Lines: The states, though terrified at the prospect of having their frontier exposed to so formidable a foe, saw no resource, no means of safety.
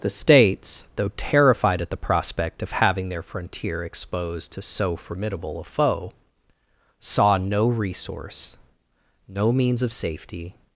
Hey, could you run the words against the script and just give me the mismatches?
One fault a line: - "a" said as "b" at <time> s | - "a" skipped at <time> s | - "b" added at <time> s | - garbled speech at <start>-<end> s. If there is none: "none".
none